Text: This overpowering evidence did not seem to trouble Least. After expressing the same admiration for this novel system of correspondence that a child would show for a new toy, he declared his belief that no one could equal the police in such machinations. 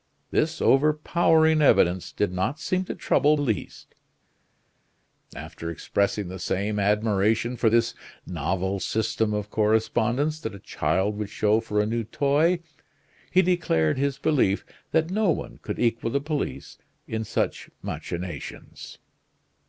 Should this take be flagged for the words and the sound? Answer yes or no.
no